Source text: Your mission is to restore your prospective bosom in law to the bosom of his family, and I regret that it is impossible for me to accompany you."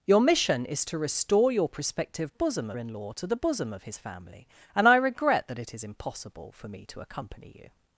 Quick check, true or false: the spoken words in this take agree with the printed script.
true